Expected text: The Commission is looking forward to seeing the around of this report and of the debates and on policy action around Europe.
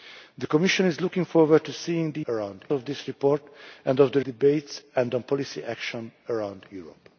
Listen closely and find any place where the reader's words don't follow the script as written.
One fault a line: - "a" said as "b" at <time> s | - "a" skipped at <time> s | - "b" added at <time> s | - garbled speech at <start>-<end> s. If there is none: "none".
none